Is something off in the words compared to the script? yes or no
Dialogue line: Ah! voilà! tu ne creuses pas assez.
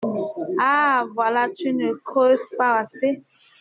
no